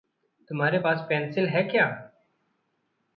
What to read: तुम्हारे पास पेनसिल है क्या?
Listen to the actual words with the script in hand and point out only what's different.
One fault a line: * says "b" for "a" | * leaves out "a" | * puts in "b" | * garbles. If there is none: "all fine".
all fine